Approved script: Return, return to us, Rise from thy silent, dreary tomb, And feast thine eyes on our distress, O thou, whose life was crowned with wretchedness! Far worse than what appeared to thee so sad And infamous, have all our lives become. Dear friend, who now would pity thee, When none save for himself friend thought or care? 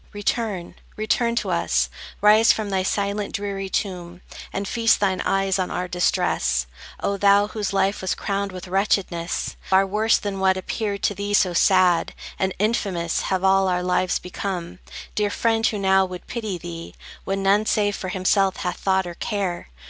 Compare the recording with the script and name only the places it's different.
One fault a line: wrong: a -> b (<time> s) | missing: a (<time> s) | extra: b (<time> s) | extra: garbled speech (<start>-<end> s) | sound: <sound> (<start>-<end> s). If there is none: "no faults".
wrong: friend -> hath (18.6 s)